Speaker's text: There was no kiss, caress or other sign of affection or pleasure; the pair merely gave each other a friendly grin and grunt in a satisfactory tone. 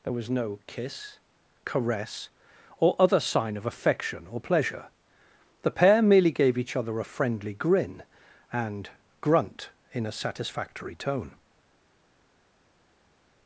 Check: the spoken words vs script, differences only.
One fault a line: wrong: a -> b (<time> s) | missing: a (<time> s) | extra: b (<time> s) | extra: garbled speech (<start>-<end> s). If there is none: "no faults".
no faults